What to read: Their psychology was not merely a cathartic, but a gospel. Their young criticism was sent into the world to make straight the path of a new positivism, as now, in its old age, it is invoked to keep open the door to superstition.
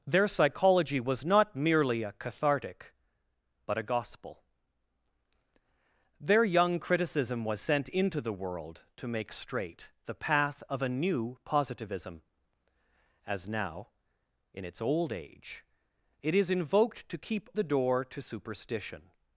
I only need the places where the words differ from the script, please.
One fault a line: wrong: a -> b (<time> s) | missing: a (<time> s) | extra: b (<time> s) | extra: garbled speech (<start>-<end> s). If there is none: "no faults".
missing: open (17.5 s)